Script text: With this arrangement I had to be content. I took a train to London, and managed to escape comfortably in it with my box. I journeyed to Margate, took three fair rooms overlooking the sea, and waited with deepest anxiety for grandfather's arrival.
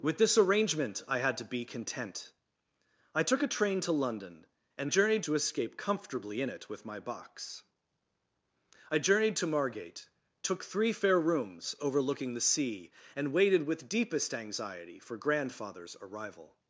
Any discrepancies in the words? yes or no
yes